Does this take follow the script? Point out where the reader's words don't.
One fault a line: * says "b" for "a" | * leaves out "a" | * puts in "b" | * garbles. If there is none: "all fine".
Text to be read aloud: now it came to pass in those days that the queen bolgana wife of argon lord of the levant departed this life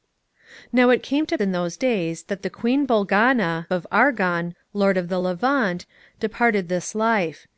* leaves out "pass"
* leaves out "wife"